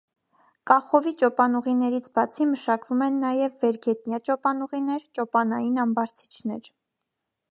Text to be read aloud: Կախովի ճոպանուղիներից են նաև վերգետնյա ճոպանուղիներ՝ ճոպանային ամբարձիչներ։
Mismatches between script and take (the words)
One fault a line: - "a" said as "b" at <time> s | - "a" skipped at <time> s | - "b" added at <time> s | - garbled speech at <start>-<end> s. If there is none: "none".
- "բացի մշակվում" added at 2.1 s